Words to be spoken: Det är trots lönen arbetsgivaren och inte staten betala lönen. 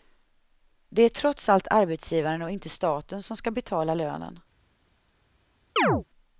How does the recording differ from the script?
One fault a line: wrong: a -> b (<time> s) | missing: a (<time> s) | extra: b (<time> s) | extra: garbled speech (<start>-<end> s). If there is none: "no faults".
wrong: lönen -> allt (1.5 s)
extra: som ska (3.2 s)